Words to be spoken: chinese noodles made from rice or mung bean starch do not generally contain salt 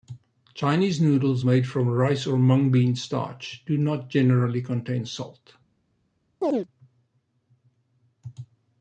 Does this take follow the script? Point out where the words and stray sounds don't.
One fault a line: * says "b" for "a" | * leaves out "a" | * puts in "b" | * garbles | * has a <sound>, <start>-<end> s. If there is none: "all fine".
* has a chirp, 6.4-6.7 s